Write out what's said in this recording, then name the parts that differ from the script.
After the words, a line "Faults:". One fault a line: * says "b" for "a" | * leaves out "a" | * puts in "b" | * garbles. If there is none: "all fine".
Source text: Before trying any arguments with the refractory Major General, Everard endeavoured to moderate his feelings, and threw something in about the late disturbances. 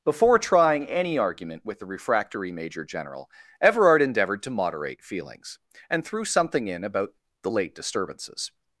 Before trying any argument with the refractory Major General, Everard endeavoured to moderate feelings, and threw something in about the late disturbances.
Faults:
* says "argument" for "arguments"
* leaves out "his"